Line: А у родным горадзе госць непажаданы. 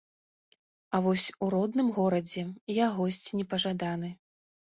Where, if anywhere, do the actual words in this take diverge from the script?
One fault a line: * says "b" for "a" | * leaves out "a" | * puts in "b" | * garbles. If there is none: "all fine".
* puts in "вось"
* puts in "я"